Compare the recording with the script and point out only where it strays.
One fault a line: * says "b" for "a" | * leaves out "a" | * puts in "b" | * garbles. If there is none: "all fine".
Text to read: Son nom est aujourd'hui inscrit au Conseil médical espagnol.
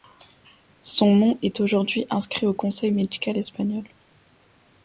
all fine